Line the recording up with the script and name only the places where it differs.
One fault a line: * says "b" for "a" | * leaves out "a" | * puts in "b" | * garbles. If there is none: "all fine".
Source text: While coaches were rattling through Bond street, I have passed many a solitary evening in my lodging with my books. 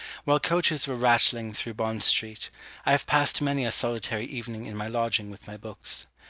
all fine